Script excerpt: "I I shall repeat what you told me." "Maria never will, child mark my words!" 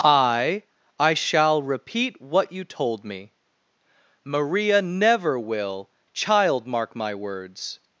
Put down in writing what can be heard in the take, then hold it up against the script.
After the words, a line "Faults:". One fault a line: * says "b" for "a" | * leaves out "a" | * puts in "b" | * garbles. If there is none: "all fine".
"I I shall repeat what you told me." "Maria never will, child mark my words!"
Faults:
all fine